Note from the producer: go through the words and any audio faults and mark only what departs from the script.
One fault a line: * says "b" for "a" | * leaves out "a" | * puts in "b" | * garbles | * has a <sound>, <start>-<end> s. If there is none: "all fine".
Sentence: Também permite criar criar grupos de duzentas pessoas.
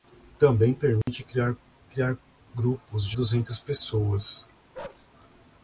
* has a dropout, 1.0-1.1 s
* has a bark, 4.7-5.1 s